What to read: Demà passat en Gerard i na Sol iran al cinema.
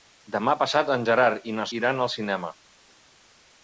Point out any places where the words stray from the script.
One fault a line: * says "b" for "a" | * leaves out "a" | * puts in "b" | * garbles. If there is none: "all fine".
* leaves out "Sol"